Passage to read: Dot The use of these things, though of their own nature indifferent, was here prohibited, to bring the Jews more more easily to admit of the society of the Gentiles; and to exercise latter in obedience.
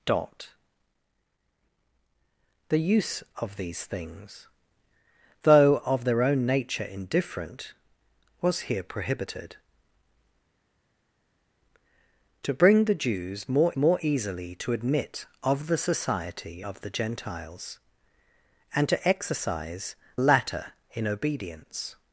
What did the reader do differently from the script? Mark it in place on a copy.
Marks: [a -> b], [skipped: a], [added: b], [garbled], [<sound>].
Dot The use of these things, though of their own nature indifferent, was here prohibited, to bring the Jews more more easily to admit of the society of the Gentiles; and to exercise latter in obedience.